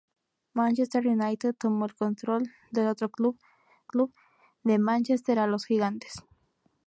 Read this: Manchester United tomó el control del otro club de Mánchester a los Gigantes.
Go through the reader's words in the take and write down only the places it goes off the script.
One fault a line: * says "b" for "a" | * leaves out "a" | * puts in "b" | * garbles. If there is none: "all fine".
* puts in "club"